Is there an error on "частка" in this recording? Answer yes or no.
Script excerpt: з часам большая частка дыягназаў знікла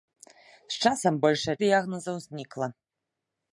yes